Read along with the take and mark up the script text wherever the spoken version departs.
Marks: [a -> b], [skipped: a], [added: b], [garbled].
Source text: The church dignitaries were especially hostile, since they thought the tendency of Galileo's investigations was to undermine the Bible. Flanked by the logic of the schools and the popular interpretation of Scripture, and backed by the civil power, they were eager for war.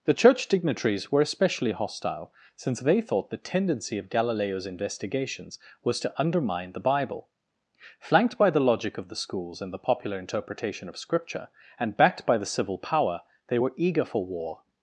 The church dignitaries were especially hostile, since they thought the tendency of Galileo's investigations was to undermine the Bible. Flanked by the logic of the schools and the popular interpretation of Scripture, and backed by the civil power, they were eager for war.